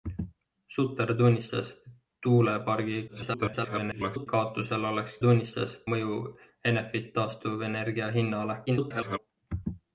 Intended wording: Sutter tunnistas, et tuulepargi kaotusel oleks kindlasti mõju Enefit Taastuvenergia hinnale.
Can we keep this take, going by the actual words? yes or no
no